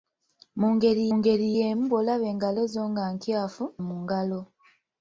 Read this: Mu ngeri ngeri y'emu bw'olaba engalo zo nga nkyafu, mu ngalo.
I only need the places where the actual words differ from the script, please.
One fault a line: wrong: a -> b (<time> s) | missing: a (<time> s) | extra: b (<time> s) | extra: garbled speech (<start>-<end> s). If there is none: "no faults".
no faults